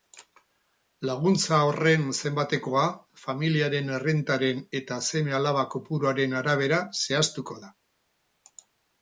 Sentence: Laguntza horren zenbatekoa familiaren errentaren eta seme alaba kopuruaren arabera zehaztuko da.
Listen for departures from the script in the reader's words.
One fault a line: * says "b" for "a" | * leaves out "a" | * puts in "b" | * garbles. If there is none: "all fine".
all fine